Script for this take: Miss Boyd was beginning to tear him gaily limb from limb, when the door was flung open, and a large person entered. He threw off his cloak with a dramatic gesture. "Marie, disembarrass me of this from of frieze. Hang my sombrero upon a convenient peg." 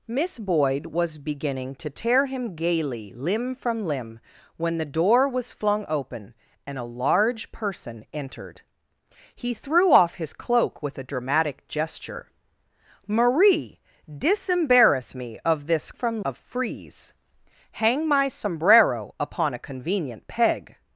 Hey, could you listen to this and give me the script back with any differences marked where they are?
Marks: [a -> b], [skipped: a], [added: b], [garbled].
Miss Boyd was beginning to tear him gaily limb from limb, when the door was flung open, and a large person entered. He threw off his cloak with a dramatic gesture. "Marie, disembarrass me of this from of frieze. Hang my sombrero upon a convenient peg."